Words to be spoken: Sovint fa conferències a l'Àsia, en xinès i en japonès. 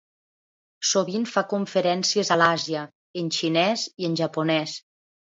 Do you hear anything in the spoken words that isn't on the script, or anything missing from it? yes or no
no